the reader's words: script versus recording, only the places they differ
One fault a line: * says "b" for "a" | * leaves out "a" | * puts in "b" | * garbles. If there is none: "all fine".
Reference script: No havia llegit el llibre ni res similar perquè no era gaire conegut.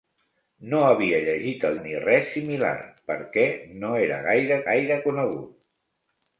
* leaves out "llibre"
* puts in "gaire"